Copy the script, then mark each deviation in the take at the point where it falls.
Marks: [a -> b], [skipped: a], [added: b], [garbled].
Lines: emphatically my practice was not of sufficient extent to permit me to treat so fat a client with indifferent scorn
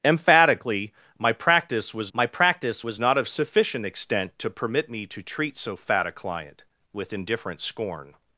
emphatically my practice was [added: my practice was] not of sufficient extent to permit me to treat so fat a client with indifferent scorn